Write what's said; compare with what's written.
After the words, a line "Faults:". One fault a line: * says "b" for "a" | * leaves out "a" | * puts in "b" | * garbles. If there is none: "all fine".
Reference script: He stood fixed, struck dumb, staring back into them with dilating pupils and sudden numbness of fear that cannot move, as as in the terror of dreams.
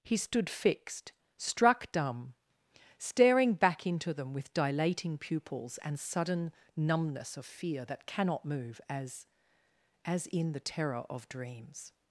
He stood fixed, struck dumb, staring back into them with dilating pupils and sudden numbness of fear that cannot move, as as in the terror of dreams.
Faults:
all fine